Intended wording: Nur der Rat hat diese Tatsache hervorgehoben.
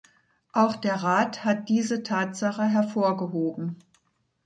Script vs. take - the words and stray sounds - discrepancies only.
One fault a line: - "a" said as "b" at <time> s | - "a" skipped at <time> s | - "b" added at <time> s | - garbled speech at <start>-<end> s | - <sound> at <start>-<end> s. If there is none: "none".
- "Nur" said as "Auch" at 0.5 s